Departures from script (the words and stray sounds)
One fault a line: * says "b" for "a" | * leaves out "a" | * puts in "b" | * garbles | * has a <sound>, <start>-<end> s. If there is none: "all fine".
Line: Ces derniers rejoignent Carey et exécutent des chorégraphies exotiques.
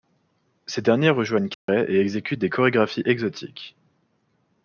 * has a dropout, 1.5-1.7 s